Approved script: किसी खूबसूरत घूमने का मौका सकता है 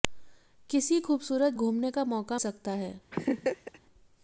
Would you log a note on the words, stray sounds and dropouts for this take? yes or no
yes